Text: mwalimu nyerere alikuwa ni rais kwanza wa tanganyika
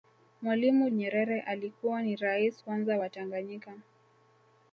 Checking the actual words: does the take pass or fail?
pass